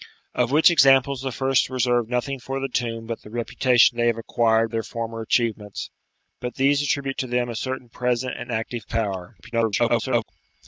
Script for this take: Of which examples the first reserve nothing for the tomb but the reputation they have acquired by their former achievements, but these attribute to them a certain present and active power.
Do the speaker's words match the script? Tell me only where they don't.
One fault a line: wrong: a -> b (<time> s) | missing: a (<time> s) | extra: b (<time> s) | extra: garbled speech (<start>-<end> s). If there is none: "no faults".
missing: by (4.7 s)
extra: garbled speech (9.4-10.3 s)